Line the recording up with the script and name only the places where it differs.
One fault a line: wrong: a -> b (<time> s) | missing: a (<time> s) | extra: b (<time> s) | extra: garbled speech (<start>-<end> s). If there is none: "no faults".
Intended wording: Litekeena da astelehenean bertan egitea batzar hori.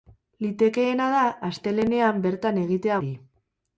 missing: batzar (3.0 s)